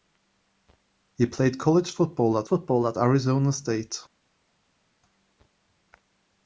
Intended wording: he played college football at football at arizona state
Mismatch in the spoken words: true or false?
false